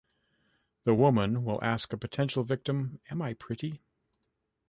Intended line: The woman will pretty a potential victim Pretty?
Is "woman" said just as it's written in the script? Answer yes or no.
yes